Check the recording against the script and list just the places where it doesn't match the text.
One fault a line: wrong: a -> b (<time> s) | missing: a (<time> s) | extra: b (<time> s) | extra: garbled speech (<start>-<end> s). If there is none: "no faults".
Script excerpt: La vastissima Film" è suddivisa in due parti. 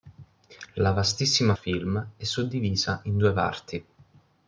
no faults